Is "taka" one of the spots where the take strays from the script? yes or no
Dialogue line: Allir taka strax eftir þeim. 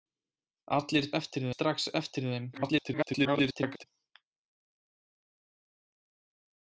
yes